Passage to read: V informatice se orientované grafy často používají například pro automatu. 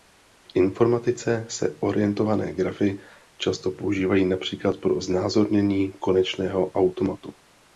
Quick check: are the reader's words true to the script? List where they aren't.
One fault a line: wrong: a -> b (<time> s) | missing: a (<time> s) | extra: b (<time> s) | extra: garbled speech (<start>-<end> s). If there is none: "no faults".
extra: znázornění konečného (5.0 s)